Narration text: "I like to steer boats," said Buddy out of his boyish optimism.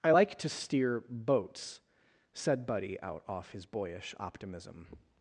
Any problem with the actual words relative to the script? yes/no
yes